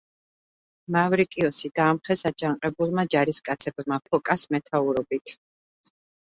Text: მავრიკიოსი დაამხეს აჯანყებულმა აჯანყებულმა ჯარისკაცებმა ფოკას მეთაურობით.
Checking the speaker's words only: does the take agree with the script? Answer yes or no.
no